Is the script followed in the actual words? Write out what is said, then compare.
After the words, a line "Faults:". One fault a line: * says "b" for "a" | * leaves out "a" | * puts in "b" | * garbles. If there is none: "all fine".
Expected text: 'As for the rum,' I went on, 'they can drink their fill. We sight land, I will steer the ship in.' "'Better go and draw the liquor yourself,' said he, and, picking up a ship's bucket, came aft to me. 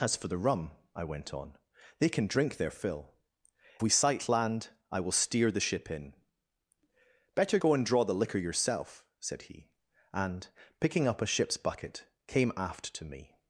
'As for the rum,' I went on, 'they can drink their fill. We sight land, I will steer the ship in.' "'Better go and draw the liquor yourself,' said he, and, picking up a ship's bucket, came aft to me.
Faults:
all fine